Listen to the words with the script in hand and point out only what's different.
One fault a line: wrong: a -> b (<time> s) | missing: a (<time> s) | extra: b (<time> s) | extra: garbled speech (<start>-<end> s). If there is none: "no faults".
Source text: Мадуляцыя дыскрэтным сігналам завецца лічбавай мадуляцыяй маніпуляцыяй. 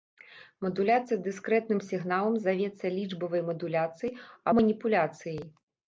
no faults